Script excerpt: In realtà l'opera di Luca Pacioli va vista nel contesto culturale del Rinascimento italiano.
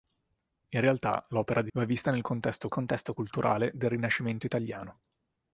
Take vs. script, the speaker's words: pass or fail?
fail